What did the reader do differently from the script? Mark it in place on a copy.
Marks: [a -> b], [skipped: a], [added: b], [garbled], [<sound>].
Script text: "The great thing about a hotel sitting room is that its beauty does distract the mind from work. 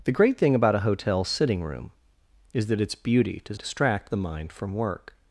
"The great thing about a hotel sitting room is that its beauty does distract the mind from work.